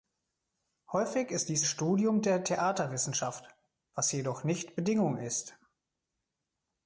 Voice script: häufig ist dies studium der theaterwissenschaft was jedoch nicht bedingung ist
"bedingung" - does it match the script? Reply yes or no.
yes